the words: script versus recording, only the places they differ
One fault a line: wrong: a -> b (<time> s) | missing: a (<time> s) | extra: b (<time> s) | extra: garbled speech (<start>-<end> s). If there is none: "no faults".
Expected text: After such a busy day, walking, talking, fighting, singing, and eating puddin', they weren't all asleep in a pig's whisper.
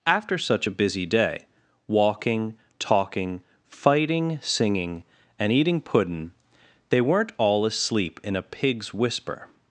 no faults